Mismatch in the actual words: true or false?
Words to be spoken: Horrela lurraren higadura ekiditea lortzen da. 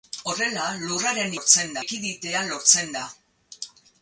true